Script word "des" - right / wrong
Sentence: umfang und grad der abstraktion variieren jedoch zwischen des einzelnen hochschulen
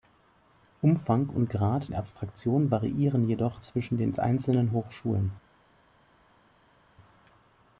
wrong